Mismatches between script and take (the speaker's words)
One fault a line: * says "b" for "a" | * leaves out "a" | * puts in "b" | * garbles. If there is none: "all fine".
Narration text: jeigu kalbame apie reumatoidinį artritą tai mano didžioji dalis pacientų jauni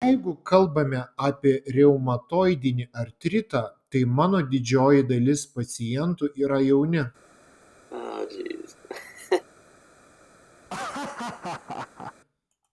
* puts in "yra"